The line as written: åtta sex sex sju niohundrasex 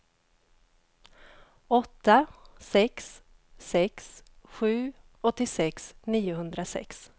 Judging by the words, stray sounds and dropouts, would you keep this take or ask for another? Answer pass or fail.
fail